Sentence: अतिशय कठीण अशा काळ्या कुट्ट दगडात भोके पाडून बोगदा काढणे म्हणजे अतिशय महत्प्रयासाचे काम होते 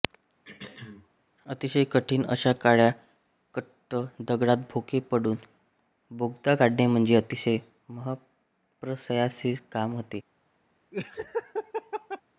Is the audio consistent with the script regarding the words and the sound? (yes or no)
no